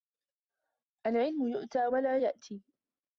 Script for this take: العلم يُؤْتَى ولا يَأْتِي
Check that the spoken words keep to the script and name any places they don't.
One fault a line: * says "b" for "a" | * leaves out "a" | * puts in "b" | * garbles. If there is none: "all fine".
all fine